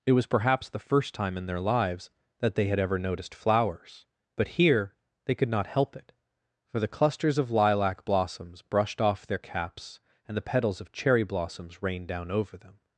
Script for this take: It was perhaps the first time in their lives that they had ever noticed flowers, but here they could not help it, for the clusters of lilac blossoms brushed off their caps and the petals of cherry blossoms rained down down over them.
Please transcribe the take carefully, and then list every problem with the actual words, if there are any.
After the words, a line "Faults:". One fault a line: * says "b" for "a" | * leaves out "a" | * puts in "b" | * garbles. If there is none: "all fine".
It was perhaps the first time in their lives that they had ever noticed flowers, but here they could not help it, for the clusters of lilac blossoms brushed off their caps and the petals of cherry blossoms rained down over them.
Faults:
* leaves out "down"